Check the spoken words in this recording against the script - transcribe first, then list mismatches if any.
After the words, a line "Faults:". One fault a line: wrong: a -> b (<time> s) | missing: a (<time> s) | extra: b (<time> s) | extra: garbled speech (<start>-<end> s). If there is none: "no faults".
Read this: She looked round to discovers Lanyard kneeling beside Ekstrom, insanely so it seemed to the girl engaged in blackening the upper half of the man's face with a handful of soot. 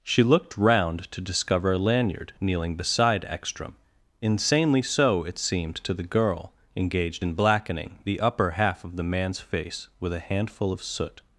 She looked round to discover Lanyard kneeling beside Ekstrom, insanely so it seemed to the girl engaged in blackening the upper half of the man's face with a handful of soot.
Faults:
wrong: discovers -> discover (1.2 s)